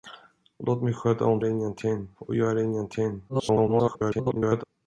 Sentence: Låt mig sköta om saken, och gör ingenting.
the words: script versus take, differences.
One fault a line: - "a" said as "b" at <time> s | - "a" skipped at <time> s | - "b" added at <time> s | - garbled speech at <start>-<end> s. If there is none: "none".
- "saken" said as "ingenting" at 1.4 s
- garbled speech at 3.3-4.6 s